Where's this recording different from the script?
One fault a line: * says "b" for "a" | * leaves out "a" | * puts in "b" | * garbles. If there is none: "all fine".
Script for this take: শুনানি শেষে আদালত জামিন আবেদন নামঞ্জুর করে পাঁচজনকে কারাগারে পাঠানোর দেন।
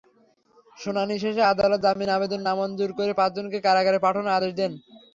* puts in "আদেশ"